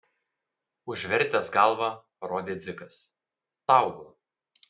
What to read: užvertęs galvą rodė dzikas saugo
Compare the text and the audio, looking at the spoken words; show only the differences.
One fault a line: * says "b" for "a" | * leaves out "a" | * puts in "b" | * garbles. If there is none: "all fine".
all fine